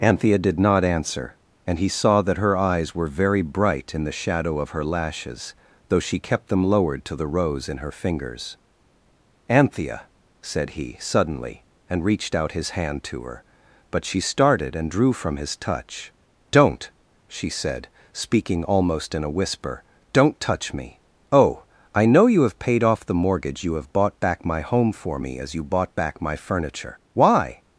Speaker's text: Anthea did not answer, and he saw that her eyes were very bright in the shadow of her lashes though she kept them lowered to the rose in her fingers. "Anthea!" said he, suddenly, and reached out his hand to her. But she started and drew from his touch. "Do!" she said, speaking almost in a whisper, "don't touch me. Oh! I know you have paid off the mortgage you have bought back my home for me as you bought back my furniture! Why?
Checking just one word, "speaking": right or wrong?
right